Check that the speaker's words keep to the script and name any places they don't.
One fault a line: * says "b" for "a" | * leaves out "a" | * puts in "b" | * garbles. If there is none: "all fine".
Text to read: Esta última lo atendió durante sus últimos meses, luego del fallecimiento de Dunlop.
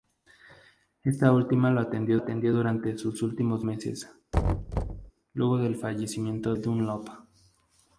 * puts in "atendió"
* leaves out "de"